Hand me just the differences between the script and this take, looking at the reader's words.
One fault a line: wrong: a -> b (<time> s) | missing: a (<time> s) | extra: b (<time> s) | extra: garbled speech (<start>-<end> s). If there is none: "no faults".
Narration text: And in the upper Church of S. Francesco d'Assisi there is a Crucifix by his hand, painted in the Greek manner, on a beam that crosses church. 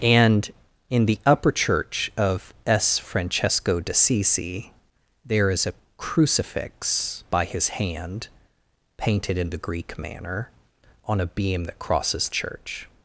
no faults